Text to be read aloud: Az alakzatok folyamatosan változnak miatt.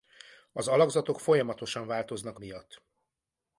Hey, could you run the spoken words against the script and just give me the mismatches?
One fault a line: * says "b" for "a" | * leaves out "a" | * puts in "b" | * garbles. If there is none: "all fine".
all fine